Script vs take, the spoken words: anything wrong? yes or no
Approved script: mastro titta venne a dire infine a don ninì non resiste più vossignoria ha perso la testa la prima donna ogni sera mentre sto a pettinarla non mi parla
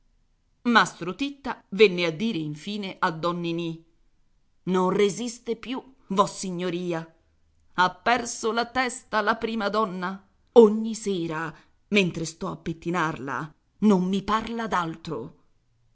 no